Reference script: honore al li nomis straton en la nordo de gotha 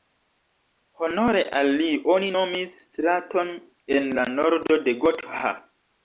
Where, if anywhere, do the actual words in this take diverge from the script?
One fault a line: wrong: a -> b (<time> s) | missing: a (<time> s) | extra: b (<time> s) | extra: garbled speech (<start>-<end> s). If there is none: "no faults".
extra: oni (2.1 s)